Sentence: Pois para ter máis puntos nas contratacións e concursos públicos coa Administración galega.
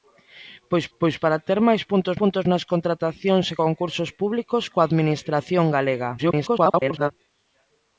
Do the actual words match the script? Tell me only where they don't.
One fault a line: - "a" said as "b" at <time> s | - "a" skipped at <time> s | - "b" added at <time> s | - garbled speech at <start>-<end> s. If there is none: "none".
- "pois" added at 1.0 s
- "puntos" added at 2.2 s
- garbled speech at 6.2-7.1 s